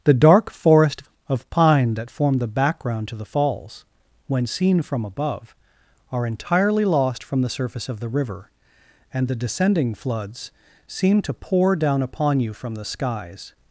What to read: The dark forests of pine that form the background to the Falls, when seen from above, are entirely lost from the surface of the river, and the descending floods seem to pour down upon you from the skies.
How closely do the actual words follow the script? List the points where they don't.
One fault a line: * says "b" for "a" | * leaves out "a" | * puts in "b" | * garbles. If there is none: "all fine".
* says "forest" for "forests"